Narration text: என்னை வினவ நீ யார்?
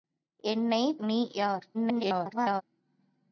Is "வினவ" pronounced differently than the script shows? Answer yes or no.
yes